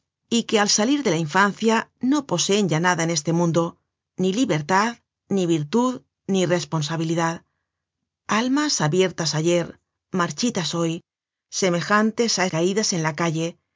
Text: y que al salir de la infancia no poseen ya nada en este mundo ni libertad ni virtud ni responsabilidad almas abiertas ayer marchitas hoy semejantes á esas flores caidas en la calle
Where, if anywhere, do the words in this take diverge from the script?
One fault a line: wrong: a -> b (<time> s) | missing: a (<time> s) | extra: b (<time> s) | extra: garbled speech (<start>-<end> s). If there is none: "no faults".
missing: esas flores (12.4 s)